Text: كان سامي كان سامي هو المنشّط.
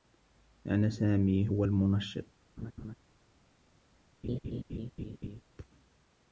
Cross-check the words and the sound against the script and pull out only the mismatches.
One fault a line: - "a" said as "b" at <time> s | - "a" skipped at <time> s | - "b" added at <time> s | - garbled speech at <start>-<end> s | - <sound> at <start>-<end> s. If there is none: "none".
- "كان سامي" skipped at 1.5 s
- laugh at 2.6-3.0 s
- laugh at 4.2-5.4 s